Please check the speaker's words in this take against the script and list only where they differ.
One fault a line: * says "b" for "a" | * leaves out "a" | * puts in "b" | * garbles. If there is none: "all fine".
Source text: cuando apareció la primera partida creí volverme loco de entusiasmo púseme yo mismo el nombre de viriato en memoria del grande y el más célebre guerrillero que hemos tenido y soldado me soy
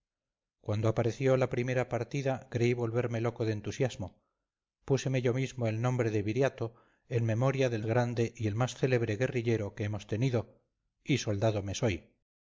all fine